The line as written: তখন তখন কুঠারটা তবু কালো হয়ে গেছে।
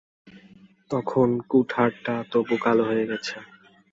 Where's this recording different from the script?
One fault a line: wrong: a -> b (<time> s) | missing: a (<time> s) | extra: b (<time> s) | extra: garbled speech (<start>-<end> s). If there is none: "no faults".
missing: তখন (1.3 s)